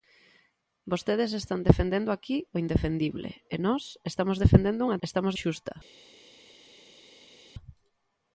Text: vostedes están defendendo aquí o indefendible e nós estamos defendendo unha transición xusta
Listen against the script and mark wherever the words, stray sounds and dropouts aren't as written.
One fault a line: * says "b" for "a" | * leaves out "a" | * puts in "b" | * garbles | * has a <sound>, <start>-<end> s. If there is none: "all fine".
* says "estamos" for "transición"